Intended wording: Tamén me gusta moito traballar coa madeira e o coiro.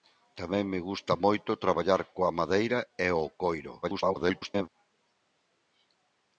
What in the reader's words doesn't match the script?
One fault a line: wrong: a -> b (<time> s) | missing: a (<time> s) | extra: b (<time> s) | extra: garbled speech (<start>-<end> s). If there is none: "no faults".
extra: garbled speech (3.8-4.7 s)